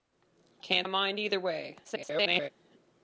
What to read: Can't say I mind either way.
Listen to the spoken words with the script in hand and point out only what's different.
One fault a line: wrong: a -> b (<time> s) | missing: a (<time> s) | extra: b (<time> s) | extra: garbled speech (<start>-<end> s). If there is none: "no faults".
missing: say (0.9 s)
extra: garbled speech (1.8-2.5 s)